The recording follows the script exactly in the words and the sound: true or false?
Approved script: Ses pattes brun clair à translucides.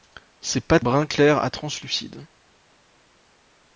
true